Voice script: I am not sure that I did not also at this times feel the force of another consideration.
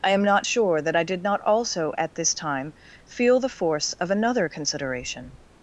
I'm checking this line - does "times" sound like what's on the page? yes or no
no